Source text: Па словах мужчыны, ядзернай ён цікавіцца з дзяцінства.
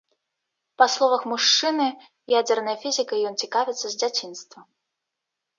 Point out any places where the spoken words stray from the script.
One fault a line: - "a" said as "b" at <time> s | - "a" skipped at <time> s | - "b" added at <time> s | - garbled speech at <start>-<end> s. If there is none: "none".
- "фізікай" added at 2.9 s